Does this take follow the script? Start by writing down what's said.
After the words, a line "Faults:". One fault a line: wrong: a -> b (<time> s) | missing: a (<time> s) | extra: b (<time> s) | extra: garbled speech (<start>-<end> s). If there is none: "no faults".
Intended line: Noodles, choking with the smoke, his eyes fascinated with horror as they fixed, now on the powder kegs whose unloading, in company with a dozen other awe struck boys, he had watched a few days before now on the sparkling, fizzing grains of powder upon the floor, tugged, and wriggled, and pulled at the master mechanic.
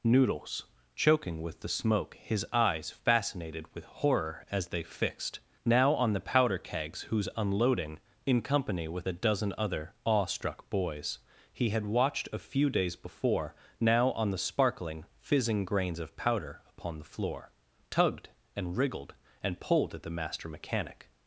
Noodles, choking with the smoke, his eyes fascinated with horror as they fixed, now on the powder kegs whose unloading, in company with a dozen other awe struck boys, he had watched a few days before now on the sparkling, fizzing grains of powder upon the floor, tugged, and wriggled, and pulled at the master mechanic.
Faults:
no faults